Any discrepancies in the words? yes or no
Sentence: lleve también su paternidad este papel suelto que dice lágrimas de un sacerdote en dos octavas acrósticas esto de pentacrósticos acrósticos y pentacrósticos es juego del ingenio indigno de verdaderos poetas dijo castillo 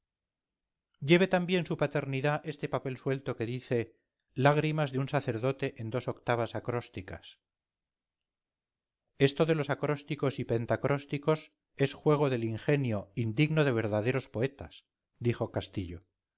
yes